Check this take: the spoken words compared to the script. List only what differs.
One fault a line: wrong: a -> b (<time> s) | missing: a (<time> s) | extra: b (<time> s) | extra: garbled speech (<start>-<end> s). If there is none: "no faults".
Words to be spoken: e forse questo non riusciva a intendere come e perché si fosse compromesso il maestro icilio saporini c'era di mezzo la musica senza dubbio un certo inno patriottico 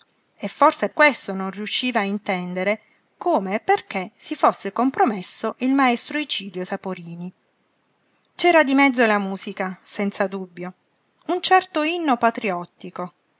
no faults